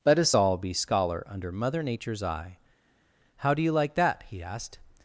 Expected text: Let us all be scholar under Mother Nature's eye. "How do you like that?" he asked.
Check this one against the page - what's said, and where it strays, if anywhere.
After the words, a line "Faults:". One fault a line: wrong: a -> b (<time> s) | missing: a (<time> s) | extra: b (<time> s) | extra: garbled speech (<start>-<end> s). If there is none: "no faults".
Let us all be scholar under Mother Nature's eye. "How do you like that?" he asked.
Faults:
no faults